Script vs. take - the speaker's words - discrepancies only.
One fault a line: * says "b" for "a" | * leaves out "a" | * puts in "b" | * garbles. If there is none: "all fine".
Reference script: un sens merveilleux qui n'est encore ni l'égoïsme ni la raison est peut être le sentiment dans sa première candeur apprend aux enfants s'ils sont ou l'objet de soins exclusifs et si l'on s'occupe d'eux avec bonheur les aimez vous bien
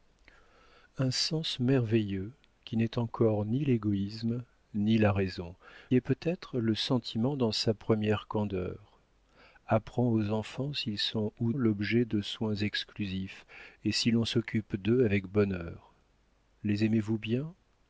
all fine